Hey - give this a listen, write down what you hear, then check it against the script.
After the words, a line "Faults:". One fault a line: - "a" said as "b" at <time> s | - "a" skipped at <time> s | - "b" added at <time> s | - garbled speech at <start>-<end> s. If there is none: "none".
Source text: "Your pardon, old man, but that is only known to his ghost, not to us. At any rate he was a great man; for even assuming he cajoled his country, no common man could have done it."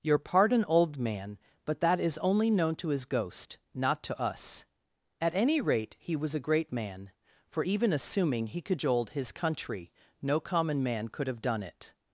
"Your pardon, old man, but that is only known to his ghost, not to us. At any rate he was a great man; for even assuming he cajoled his country, no common man could have done it."
Faults:
none